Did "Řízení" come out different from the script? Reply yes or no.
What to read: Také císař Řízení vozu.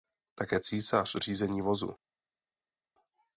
no